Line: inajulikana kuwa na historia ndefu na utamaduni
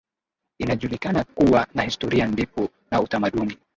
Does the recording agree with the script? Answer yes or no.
yes